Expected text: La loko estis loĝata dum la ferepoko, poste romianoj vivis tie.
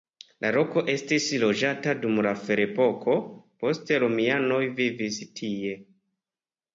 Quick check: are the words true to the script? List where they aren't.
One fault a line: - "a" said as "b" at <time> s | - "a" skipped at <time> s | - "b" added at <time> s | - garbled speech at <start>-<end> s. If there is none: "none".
none